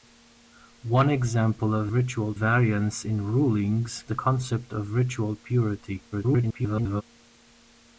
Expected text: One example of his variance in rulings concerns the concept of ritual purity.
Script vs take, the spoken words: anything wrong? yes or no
yes